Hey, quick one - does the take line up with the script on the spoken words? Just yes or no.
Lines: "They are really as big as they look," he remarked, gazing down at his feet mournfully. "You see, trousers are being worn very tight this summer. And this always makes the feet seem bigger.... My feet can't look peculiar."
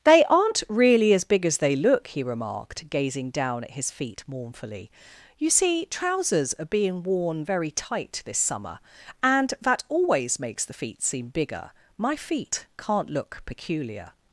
no